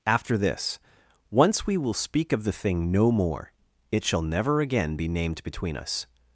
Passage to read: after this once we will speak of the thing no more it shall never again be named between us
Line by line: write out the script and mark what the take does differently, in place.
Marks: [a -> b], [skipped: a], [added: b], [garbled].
after this once we will speak of the thing no more it shall never again be named between us